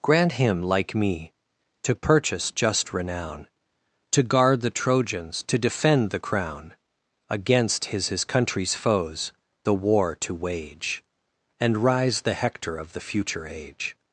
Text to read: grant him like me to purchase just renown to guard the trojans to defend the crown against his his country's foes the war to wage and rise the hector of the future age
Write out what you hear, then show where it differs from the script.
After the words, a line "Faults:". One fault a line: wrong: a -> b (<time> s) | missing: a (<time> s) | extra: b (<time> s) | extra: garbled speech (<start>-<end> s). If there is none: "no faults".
grant him like me to purchase just renown to guard the trojans to defend the crown against his his country's foes the war to wage and rise the hector of the future age
Faults:
no faults